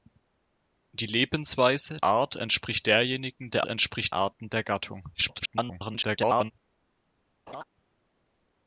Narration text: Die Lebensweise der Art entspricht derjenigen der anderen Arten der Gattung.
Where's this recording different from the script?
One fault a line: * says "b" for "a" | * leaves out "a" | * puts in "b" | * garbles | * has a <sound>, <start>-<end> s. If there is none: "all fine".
* leaves out "der"
* says "entspricht" for "anderen"
* garbles
* has a laugh, 7.5-7.6 s